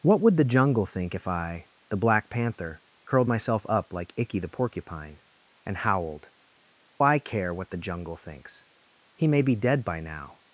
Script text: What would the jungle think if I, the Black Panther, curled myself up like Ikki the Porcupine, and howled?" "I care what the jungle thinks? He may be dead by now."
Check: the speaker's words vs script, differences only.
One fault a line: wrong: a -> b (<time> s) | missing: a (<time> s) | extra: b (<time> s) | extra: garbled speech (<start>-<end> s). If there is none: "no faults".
no faults